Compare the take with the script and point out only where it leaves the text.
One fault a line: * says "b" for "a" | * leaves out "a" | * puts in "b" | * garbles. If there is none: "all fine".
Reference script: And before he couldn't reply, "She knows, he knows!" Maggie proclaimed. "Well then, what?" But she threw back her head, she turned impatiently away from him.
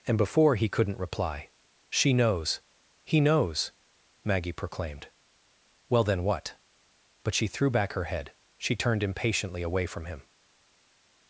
all fine